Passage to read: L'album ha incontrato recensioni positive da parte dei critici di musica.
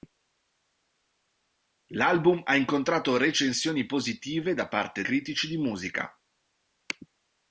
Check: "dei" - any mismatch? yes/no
yes